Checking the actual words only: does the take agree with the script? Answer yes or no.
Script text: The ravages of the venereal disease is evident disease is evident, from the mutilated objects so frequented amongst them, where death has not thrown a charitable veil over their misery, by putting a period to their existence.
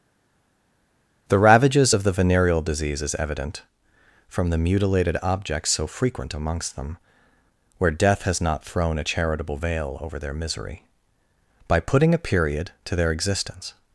no